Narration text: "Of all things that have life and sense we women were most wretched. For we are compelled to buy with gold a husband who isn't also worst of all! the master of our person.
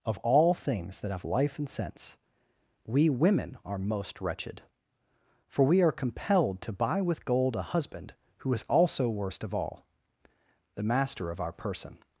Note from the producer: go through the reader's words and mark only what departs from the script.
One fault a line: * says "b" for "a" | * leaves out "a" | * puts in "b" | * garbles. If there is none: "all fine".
* says "are" for "were"
* says "is" for "isn't"